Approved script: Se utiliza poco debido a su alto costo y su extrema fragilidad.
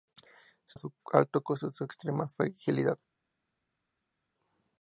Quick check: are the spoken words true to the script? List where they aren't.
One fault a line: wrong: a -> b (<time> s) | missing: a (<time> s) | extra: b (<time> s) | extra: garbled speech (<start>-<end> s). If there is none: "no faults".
missing: utiliza poco debido (0.7 s)